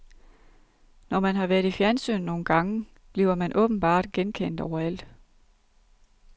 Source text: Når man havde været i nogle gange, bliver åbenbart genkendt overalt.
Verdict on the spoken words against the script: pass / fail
fail